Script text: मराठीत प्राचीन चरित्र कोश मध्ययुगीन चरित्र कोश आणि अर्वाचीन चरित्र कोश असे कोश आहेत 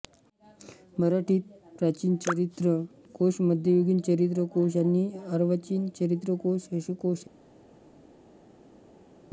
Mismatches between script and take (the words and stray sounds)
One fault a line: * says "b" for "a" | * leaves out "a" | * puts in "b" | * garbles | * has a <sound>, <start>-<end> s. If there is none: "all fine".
all fine